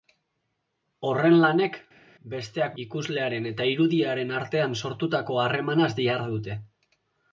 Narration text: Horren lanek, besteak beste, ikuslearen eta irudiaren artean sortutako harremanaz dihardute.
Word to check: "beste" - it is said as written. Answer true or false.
false